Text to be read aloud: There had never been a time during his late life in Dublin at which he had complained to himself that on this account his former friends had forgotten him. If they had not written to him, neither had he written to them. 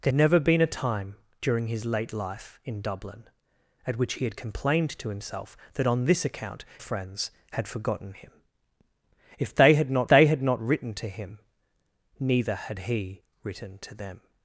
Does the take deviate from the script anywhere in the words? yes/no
yes